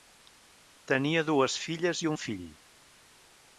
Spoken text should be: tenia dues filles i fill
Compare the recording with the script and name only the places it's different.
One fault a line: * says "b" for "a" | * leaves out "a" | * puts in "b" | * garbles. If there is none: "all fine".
* puts in "un"